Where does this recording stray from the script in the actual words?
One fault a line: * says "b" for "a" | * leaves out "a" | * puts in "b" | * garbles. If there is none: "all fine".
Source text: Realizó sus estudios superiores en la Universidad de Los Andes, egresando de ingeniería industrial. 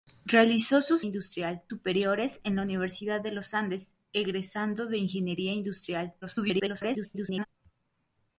* says "industrial" for "estudios"
* garbles